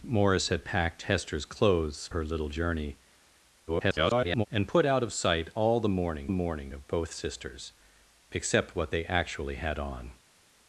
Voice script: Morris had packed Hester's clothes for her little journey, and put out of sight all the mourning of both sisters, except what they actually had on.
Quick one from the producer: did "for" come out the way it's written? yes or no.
no